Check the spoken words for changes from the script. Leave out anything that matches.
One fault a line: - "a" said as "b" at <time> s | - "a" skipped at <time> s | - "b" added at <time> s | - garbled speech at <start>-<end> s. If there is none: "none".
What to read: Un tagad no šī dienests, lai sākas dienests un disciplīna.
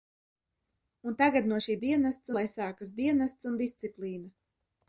none